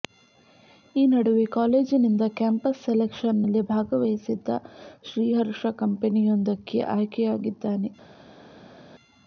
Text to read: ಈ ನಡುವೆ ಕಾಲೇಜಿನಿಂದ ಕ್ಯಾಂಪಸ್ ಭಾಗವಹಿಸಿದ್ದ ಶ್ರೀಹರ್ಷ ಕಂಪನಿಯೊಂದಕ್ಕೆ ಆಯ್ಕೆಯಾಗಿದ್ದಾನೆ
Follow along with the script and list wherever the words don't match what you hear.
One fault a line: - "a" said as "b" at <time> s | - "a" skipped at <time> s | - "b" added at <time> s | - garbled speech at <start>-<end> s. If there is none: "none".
- "ಸೆಲೆಕ್ಷನ್ ನಲ್ಲಿ" added at 2.9 s